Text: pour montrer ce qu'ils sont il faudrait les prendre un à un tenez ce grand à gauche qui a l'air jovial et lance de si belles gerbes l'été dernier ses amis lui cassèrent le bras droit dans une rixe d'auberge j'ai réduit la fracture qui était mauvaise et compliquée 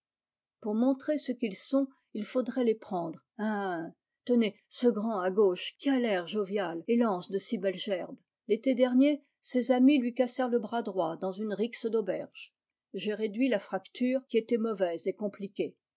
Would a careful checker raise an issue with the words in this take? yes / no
no